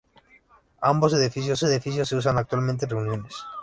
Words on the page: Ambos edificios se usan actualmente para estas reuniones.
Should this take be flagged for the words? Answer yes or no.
yes